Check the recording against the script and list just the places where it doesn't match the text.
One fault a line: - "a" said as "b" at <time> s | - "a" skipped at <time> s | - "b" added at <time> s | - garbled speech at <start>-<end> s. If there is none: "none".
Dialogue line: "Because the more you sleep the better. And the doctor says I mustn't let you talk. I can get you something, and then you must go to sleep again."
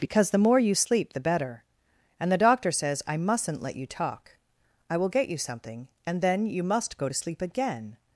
- "can" said as "will" at 5.0 s